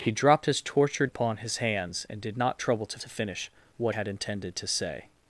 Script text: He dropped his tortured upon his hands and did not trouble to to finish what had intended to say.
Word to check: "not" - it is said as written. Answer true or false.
true